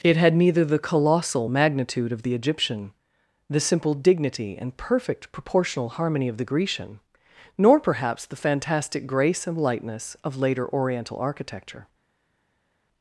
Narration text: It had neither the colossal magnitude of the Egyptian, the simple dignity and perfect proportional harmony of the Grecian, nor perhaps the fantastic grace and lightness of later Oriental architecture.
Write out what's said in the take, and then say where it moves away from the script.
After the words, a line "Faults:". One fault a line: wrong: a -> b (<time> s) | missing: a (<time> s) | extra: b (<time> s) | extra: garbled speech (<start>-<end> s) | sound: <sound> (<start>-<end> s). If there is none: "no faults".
It had neither the colossal magnitude of the Egyptian, the simple dignity and perfect proportional harmony of the Grecian, nor perhaps the fantastic grace and lightness of later Oriental architecture.
Faults:
no faults